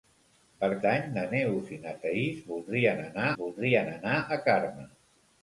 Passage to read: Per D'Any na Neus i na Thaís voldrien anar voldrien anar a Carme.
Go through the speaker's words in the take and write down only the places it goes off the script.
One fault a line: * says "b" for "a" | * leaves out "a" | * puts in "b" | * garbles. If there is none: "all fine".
all fine